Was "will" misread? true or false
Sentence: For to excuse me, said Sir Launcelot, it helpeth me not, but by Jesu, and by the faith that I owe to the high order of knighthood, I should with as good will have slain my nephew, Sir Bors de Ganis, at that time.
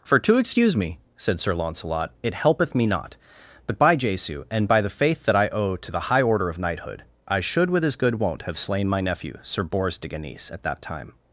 true